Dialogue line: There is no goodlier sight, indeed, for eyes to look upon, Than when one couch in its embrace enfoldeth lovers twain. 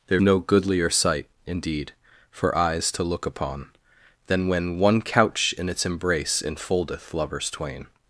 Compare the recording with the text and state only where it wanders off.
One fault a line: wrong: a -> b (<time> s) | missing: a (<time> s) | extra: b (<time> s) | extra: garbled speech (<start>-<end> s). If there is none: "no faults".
missing: is (0.2 s)